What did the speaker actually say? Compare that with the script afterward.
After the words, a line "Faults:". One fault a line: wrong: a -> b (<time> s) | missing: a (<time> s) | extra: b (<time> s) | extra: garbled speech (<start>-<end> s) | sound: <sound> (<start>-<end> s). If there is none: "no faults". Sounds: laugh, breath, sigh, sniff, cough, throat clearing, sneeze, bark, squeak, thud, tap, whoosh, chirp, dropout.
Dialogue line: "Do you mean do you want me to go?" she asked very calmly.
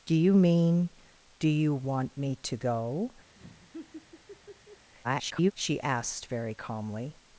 "Do you mean do you want me to go?" [garbled] she asked very calmly.
Faults:
sound: laugh (3.4-4.9 s)
extra: garbled speech (5.0-5.5 s)